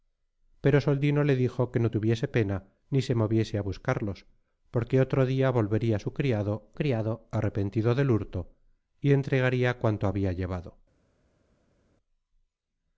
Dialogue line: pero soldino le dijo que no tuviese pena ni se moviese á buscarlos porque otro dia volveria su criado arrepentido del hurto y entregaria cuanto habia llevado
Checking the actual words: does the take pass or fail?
fail